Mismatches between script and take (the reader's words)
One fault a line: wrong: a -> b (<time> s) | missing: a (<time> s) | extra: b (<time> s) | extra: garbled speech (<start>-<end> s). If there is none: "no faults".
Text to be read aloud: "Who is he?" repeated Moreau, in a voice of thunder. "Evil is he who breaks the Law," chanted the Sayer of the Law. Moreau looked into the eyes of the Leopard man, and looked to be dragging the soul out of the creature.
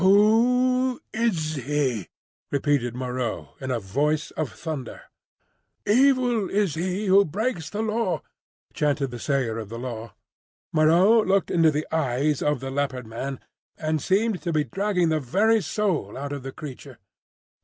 wrong: looked -> seemed (14.0 s)
extra: very (15.2 s)